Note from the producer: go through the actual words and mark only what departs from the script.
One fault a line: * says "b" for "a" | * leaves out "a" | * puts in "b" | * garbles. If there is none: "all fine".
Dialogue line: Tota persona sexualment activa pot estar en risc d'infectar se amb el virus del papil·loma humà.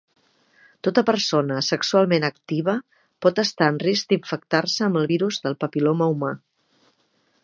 all fine